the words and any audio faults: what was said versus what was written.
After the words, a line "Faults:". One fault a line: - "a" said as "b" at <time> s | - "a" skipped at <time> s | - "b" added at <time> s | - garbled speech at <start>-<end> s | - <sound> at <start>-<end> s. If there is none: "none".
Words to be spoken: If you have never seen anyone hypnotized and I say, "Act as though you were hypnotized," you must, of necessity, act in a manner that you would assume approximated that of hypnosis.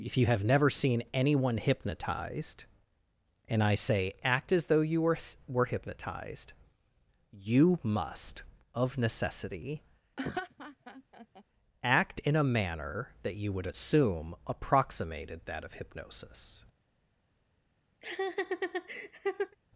If you have never seen anyone hypnotized and I say, "Act as though you were were hypnotized," you must, of necessity, act in a manner that you would assume approximated that of hypnosis.
Faults:
- "were" added at 5.5 s
- laugh at 10.2-11.4 s
- laugh at 18.0-19.6 s